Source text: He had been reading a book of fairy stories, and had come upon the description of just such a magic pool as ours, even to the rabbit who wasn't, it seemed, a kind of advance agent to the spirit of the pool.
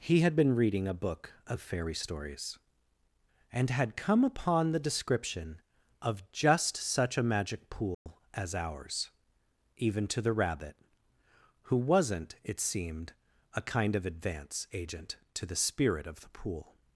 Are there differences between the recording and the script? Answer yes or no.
no